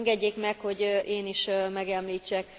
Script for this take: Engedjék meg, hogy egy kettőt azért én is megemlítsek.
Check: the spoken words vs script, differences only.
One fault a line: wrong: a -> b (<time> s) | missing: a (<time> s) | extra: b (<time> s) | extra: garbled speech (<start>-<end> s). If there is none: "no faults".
missing: egy kettőt azért (0.8 s)